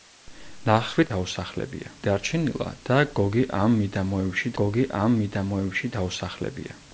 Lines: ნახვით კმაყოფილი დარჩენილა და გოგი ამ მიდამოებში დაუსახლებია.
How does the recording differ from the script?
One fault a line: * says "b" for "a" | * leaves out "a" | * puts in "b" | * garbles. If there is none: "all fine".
* says "დაუსახლებია" for "კმაყოფილი"
* puts in "გოგი ამ მიდამოებში"